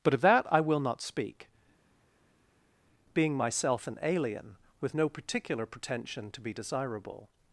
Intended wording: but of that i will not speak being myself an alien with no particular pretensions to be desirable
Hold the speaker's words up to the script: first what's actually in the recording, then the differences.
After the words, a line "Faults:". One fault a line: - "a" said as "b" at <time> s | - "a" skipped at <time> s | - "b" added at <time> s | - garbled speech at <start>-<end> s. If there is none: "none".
but of that i will not speak being myself an alien with no particular pretension to be desirable
Faults:
- "pretensions" said as "pretension" at 5.7 s